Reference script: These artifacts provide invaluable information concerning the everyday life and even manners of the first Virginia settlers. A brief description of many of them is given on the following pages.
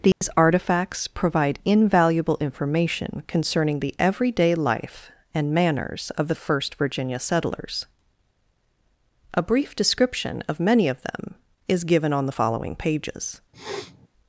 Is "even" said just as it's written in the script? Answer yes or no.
no